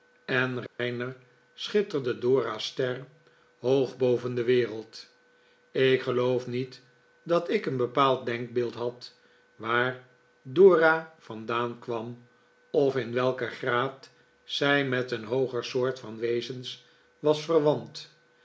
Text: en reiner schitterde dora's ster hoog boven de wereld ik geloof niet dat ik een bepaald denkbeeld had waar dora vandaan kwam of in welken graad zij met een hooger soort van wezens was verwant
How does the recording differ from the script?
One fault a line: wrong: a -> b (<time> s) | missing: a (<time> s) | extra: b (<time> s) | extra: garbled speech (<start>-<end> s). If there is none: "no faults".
no faults